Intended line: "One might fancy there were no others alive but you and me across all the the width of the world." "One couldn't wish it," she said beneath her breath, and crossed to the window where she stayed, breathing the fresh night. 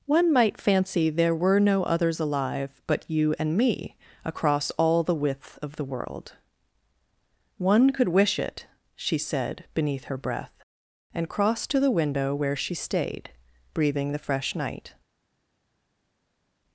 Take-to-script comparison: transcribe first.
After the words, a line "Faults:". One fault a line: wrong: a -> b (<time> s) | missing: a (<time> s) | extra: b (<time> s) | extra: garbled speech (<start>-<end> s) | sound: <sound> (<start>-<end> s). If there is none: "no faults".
"One might fancy there were no others alive but you and me across all the width of the world." "One could wish it," she said beneath her breath, and crossed to the window where she stayed, breathing the fresh night.
Faults:
missing: the (5.2 s)
wrong: couldn't -> could (7.9 s)